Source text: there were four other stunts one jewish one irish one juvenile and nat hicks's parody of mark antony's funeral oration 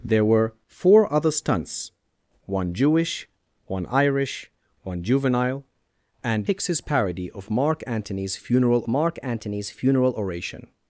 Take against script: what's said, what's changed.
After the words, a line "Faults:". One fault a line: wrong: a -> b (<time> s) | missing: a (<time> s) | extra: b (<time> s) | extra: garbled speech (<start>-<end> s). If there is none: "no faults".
there were four other stunts one jewish one irish one juvenile and hicks's parody of mark antony's funeral mark antony's funeral oration
Faults:
missing: nat (6.5 s)
extra: mark antony's funeral (8.9 s)